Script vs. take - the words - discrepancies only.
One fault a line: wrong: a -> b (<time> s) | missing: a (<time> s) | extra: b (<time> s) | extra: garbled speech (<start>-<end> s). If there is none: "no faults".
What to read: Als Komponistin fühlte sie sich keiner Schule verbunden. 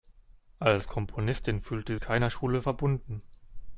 missing: sie sich (1.9 s)